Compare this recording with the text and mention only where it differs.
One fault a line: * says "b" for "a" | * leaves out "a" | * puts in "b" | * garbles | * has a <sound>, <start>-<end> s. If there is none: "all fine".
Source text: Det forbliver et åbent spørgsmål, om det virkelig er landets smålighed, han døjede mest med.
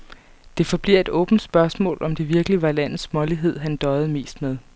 * says "var" for "er"